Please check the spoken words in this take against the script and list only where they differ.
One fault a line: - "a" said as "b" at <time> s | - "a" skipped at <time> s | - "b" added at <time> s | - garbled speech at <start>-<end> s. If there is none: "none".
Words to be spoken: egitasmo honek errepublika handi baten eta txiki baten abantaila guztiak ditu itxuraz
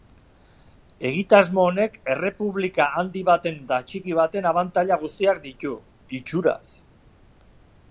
none